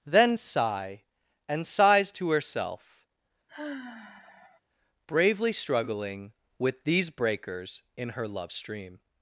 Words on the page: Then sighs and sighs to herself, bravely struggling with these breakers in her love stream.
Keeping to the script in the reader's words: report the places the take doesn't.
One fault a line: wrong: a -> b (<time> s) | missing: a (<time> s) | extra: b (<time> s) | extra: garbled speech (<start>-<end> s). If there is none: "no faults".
wrong: sighs -> sigh (0.4 s)